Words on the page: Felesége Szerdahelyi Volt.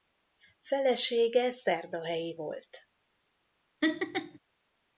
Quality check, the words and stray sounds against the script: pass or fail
fail